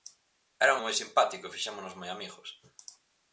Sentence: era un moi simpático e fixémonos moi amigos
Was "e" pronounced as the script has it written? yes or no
yes